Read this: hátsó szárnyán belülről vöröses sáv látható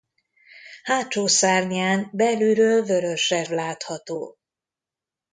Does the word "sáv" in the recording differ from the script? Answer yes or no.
yes